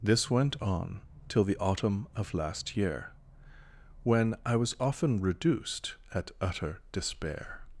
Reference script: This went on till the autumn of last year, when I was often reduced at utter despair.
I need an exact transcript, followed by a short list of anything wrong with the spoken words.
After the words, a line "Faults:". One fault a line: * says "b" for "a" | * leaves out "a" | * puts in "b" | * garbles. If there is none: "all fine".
This went on till the autumn of last year, when I was often reduced at utter despair.
Faults:
all fine